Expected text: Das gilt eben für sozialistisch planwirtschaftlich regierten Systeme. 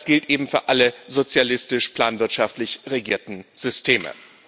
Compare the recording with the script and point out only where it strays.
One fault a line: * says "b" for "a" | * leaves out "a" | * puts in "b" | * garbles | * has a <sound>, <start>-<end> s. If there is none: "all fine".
* puts in "alle"